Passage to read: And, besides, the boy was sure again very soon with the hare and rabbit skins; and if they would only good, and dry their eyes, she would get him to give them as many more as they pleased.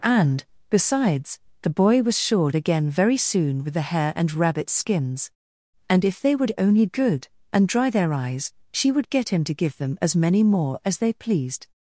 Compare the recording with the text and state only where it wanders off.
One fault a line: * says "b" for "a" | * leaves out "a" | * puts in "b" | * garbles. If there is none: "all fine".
all fine